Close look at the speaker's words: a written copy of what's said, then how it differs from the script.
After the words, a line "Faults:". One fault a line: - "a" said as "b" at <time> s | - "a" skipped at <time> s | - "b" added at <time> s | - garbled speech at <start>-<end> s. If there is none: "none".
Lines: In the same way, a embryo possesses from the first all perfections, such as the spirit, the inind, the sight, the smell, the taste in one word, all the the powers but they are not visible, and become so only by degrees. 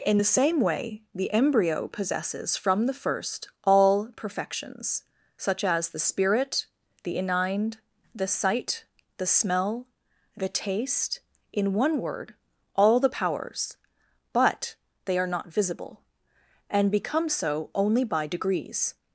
In the same way, the embryo possesses from the first all perfections, such as the spirit, the inind, the sight, the smell, the taste in one word, all the powers but they are not visible, and become so only by degrees.
Faults:
- "a" said as "the" at 1.1 s
- "the" skipped at 13.1 s